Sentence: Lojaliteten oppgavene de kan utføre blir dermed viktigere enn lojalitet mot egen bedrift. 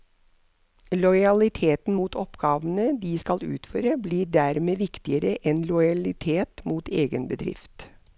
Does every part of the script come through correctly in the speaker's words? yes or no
no